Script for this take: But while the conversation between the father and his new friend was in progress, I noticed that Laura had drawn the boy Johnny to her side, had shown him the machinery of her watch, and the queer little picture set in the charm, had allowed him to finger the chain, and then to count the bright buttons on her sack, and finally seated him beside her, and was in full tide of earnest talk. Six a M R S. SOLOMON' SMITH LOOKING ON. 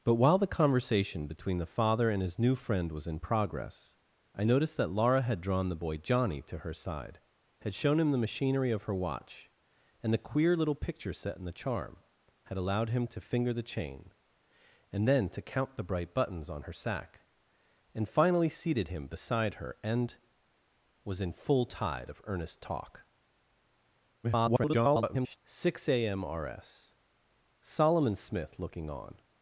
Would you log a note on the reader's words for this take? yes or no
yes